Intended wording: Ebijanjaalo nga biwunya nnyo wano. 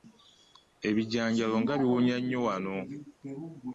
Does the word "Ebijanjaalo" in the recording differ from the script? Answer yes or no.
no